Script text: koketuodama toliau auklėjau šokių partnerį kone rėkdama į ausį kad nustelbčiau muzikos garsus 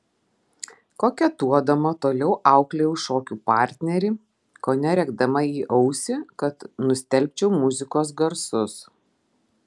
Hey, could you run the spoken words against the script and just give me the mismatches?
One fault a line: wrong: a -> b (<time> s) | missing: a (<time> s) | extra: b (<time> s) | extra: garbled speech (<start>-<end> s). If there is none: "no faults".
no faults